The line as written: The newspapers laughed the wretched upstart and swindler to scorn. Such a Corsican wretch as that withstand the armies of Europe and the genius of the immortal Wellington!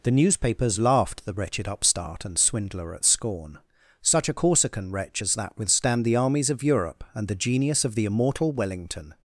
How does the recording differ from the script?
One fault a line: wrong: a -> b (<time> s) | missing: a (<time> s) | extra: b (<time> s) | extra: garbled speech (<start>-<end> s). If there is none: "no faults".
wrong: to -> at (3.0 s)